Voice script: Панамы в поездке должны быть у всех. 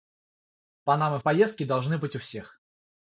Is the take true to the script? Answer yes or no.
yes